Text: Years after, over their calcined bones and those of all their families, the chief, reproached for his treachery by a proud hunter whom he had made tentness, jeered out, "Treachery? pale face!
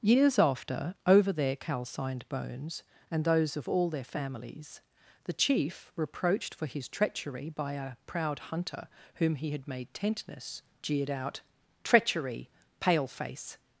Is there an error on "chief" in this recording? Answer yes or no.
no